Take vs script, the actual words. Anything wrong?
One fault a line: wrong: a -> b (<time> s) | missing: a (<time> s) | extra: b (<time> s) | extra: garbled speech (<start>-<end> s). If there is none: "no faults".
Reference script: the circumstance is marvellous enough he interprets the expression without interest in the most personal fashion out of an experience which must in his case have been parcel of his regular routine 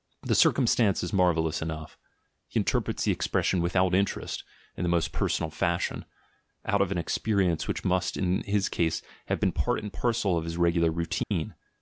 extra: part and (9.5 s)